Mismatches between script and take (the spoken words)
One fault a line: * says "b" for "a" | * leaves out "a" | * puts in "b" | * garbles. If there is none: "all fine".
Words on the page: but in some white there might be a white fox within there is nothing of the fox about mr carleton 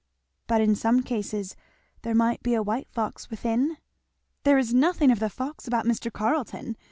* says "cases" for "white"